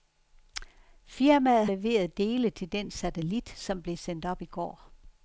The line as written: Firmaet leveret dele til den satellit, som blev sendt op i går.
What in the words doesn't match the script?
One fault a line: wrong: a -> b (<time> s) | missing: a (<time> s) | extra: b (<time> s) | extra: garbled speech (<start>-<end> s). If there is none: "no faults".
no faults